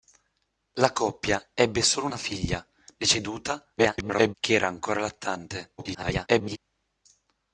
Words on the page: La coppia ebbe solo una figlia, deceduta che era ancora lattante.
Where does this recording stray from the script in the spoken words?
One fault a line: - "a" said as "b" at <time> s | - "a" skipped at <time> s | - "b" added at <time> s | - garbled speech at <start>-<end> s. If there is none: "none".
- garbled speech at 3.8-4.3 s
- garbled speech at 5.8-6.6 s